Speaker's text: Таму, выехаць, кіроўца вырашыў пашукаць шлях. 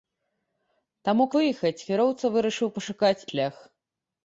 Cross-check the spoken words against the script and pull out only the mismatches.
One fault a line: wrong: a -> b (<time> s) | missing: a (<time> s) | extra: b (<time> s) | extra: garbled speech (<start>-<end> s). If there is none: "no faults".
no faults